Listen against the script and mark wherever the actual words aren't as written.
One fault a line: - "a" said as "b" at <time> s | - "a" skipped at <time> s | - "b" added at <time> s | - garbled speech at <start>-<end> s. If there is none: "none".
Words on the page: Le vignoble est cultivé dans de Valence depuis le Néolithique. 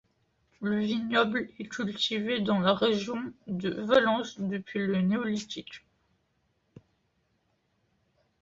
- "la région" added at 2.6 s